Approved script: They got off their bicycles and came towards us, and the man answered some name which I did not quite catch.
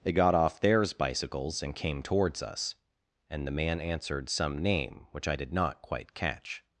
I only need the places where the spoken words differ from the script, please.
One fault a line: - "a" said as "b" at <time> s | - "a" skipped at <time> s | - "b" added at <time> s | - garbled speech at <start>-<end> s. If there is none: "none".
- "their" said as "theirs" at 0.6 s